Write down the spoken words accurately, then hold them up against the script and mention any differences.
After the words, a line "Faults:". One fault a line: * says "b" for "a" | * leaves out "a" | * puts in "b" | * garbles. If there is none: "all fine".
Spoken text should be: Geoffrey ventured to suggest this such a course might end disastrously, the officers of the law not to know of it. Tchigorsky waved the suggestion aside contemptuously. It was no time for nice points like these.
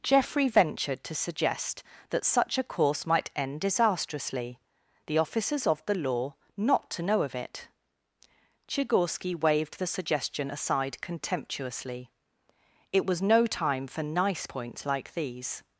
Geoffrey ventured to suggest that such a course might end disastrously, the officers of the law not to know of it. Tchigorsky waved the suggestion aside contemptuously. It was no time for nice points like these.
Faults:
* says "that" for "this"